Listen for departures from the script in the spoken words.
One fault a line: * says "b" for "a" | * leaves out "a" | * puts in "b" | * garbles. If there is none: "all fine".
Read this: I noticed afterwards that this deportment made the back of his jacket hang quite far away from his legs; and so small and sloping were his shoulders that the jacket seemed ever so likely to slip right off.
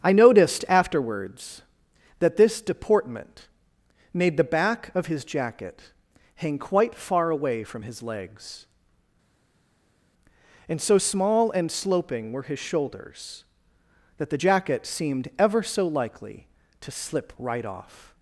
all fine